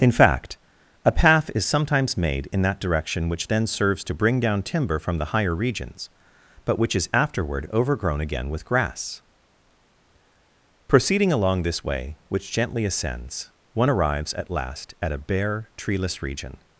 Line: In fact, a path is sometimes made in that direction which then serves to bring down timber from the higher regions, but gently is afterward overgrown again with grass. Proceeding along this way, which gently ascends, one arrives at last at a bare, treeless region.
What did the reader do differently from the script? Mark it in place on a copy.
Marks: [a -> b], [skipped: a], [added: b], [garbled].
In fact, a path is sometimes made in that direction which then serves to bring down timber from the higher regions, but [gently -> which] is afterward overgrown again with grass. Proceeding along this way, which gently ascends, one arrives at last at a bare, treeless region.